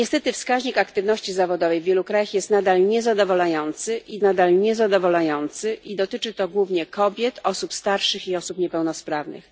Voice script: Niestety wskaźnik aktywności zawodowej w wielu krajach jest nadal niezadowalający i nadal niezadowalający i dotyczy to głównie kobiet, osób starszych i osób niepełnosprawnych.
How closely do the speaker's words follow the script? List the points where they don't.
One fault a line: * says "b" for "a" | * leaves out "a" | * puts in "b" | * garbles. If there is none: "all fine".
all fine